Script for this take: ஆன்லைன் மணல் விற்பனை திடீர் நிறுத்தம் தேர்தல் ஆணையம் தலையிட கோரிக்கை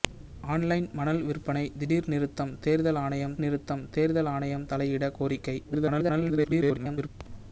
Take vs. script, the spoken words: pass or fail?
fail